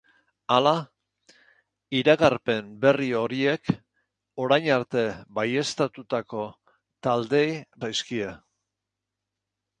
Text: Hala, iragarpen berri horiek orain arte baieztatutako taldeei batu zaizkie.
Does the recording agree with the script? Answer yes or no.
no